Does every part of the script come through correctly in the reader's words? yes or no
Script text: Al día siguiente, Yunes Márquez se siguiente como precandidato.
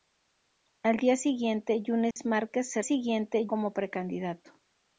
yes